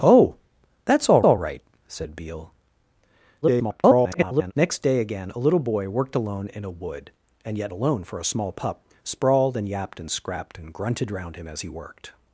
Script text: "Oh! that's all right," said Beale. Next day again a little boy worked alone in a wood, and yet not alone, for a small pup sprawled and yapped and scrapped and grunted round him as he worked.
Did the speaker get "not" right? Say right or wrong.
wrong